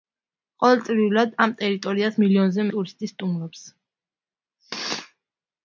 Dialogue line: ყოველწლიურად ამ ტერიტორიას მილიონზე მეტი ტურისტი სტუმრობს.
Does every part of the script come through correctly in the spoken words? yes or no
no